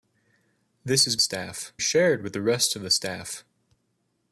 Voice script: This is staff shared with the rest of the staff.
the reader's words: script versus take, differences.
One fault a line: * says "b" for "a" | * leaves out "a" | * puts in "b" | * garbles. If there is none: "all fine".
all fine